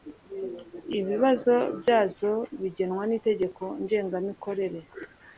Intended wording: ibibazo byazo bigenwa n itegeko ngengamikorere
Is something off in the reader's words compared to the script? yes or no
no